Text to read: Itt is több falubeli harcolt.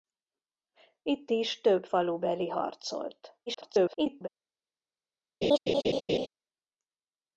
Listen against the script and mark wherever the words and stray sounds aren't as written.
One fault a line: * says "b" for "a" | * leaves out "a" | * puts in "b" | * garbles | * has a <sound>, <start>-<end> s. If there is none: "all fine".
* garbles
* has a laugh, 5.4-6.3 s